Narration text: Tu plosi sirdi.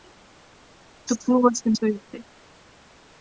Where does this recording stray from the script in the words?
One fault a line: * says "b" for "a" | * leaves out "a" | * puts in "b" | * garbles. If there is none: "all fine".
all fine